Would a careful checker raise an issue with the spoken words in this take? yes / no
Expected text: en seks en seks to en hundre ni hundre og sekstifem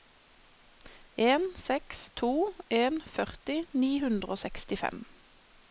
yes